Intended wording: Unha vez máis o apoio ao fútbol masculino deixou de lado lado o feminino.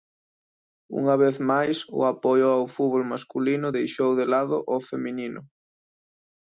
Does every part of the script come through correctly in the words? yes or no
no